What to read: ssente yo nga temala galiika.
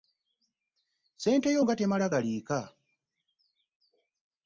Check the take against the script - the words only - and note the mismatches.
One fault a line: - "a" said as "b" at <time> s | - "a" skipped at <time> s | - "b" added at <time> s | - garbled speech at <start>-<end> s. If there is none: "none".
none